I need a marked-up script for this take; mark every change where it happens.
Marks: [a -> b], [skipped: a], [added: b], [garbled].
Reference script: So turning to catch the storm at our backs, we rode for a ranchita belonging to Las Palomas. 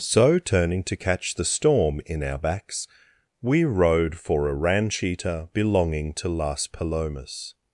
So turning to catch the storm [at -> in] our backs, we rode for a ranchita belonging to Las Palomas.